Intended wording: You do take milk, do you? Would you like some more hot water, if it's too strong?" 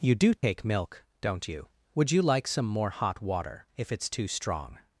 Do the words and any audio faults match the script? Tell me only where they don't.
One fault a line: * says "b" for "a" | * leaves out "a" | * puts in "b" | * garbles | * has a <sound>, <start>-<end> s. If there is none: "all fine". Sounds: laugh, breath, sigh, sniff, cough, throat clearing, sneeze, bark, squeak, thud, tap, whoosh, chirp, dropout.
* has a dropout, 0.4-0.4 s
* says "don't" for "do"